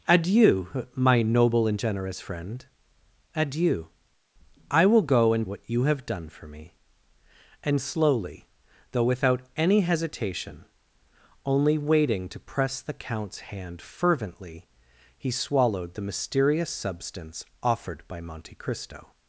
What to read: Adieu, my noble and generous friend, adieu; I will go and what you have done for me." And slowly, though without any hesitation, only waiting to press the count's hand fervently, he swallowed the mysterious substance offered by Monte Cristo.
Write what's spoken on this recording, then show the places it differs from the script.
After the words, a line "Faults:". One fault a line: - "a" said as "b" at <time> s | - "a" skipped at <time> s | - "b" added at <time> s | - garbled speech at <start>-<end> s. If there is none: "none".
Adieu, my noble and generous friend, adieu; I will go and what you have done for me." And slowly, though without any hesitation, only waiting to press the count's hand fervently, he swallowed the mysterious substance offered by Monte Cristo.
Faults:
none